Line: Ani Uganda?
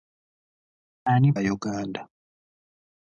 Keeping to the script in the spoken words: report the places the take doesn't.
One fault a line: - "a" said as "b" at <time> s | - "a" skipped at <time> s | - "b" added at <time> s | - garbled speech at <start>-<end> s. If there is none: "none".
none